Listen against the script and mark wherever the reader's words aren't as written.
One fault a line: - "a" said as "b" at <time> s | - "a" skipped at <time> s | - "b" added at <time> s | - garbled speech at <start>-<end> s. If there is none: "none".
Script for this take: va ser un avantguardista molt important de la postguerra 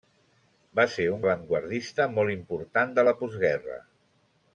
none